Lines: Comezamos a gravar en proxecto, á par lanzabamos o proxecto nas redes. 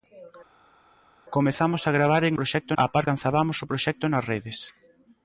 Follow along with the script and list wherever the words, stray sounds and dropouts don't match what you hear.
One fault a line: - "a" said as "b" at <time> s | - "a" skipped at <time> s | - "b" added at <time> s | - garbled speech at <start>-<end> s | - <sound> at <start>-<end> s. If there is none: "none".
none